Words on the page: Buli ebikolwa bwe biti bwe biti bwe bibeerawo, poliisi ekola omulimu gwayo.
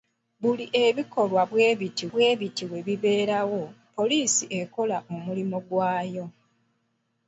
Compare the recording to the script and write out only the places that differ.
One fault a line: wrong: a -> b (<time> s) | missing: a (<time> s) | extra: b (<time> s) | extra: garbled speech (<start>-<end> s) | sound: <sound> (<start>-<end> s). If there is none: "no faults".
no faults